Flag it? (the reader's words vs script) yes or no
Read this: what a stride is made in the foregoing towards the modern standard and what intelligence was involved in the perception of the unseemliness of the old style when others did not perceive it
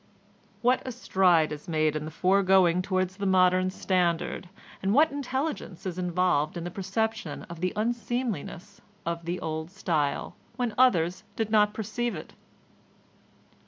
yes